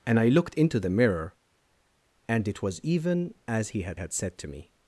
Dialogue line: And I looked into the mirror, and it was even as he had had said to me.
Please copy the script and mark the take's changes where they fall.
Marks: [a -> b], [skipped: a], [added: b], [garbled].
And I looked into the mirror, and it was even as he had had said to me.